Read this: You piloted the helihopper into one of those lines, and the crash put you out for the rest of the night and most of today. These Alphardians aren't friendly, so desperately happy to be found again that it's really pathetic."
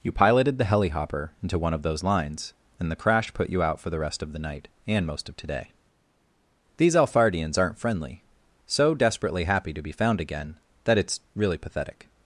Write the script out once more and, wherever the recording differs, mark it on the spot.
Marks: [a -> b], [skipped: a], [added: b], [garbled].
You piloted the helihopper into one of those lines, and the crash put you out for the rest of the night and most of today. These Alphardians aren't friendly, so desperately happy to be found again that it's really pathetic."